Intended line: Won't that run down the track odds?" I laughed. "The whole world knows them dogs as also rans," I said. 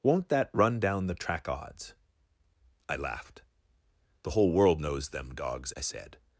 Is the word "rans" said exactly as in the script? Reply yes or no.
no